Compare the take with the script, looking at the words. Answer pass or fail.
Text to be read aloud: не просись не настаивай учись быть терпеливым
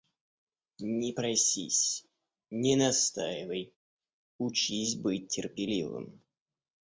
pass